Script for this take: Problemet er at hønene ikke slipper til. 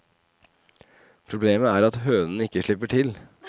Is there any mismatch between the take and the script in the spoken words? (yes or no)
no